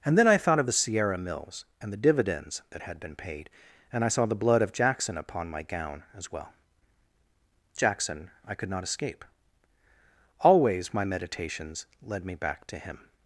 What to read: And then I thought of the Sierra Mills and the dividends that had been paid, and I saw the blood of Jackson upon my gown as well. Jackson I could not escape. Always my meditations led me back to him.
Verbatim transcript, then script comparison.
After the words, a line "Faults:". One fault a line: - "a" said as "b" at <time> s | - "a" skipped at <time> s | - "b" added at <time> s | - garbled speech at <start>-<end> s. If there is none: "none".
And then I thought of the Sierra Mills and the dividends that had been paid, and I saw the blood of Jackson upon my gown as well. Jackson I could not escape. Always my meditations led me back to him.
Faults:
none